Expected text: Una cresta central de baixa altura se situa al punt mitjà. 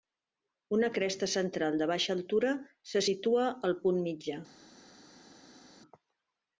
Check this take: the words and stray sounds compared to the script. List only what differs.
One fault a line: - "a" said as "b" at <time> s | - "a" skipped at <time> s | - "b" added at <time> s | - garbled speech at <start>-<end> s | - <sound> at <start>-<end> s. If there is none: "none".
none